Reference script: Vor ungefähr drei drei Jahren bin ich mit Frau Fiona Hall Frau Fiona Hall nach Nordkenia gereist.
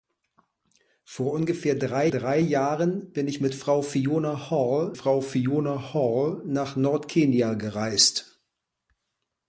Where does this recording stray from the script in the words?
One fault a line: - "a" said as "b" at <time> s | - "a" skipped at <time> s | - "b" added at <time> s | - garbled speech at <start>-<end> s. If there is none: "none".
none